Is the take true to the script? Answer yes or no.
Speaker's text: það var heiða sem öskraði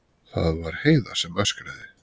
yes